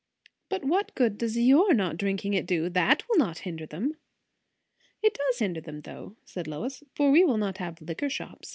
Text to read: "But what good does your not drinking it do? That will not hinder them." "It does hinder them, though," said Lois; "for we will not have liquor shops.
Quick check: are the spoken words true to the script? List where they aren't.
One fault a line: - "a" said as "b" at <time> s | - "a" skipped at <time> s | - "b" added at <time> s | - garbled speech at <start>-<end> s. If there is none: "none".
none